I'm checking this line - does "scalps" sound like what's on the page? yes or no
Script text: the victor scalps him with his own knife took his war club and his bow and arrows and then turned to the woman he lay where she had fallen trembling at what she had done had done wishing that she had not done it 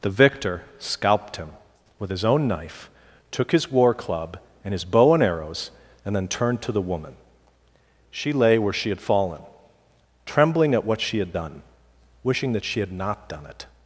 no